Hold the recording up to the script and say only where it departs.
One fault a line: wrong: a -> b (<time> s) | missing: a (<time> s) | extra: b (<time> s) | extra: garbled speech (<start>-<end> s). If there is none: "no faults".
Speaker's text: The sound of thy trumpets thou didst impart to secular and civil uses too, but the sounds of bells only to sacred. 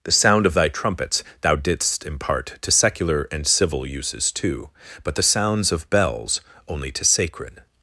no faults